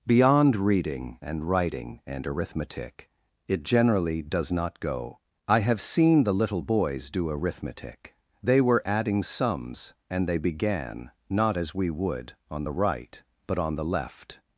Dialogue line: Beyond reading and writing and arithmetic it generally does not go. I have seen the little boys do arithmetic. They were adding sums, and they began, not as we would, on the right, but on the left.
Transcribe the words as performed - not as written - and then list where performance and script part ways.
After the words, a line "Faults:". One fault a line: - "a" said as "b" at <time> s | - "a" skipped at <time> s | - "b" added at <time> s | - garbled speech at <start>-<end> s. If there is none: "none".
Beyond reading and writing and arithmetic it generally does not go. I have seen the little boys do arithmetic. They were adding sums, and they began, not as we would, on the right, but on the left.
Faults:
none